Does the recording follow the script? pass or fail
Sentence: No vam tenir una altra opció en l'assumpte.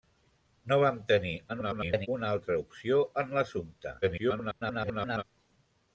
fail